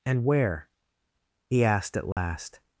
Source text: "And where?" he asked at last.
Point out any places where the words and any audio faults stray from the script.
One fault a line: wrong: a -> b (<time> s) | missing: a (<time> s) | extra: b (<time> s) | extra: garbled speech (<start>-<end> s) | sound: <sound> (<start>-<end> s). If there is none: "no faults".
sound: dropout (2.1-2.2 s)